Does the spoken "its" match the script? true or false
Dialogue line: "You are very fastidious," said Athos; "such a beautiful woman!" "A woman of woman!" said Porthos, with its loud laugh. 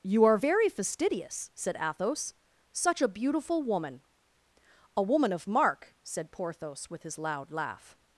false